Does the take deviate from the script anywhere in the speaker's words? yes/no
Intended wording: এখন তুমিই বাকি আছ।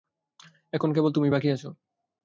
yes